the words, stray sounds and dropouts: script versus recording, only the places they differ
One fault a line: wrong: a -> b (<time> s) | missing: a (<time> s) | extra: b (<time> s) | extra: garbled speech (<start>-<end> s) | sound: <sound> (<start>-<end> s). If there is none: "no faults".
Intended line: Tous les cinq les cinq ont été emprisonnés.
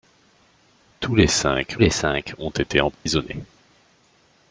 sound: dropout (2.9-3.1 s)